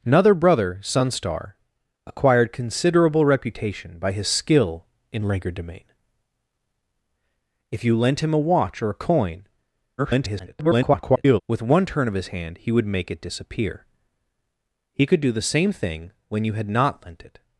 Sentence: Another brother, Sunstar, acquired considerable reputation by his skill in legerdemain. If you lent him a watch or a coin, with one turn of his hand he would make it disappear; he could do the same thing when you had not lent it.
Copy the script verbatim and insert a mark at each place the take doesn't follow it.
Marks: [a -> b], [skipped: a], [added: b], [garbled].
Another brother, Sunstar, acquired considerable reputation by his skill in legerdemain. If you lent him a watch or a coin, [garbled] with one turn of his hand he would make it disappear; he could do the same thing when you had not lent it.